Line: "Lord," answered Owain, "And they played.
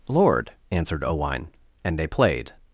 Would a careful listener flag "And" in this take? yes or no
no